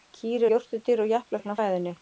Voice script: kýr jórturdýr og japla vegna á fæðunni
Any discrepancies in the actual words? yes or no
no